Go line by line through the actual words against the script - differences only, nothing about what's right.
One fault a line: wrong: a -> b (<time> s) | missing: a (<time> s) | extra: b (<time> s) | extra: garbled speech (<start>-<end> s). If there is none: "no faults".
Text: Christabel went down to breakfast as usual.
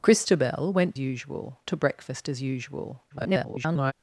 wrong: down -> usual (1.0 s)
extra: garbled speech (3.1-3.9 s)